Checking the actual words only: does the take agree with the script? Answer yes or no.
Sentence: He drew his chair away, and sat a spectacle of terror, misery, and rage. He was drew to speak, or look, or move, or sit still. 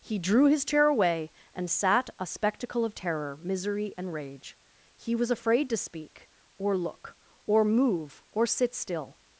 no